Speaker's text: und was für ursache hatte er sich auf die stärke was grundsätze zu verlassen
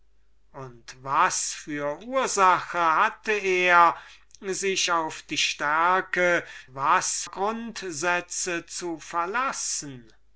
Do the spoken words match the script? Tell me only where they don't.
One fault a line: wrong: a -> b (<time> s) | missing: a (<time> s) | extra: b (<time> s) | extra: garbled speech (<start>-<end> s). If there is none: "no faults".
no faults